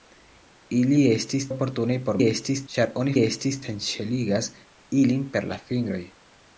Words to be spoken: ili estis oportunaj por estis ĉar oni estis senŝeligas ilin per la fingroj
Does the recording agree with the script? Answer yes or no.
yes